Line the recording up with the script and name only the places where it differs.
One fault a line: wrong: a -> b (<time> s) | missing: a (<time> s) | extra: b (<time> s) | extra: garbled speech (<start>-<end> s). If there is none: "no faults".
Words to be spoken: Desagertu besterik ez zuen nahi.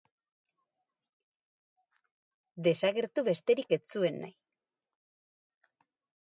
no faults